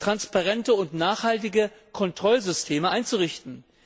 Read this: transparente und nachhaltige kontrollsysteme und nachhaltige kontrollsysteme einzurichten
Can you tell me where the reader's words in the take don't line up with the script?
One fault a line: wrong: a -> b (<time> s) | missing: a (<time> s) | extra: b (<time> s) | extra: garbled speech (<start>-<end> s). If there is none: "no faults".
missing: und nachhaltige kontrollsysteme (2.9 s)